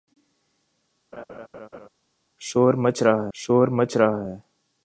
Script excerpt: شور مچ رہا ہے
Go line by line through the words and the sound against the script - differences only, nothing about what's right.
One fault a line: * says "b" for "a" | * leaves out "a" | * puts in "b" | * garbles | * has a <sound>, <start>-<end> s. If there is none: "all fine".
* has a laugh, 1.1-1.9 s
* puts in "شور مچ رہا"